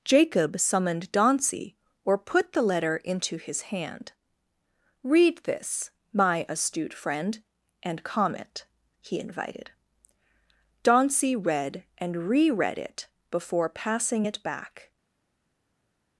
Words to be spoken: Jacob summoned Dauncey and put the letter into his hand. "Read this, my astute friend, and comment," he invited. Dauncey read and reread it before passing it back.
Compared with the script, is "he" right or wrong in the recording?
right